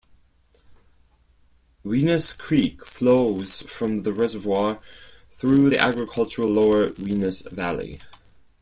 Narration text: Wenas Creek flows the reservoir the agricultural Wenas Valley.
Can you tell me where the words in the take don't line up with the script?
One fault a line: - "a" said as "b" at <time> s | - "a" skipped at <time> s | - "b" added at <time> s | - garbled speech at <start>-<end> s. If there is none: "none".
- "from" added at 3.7 s
- "through" added at 5.4 s
- "lower" added at 6.5 s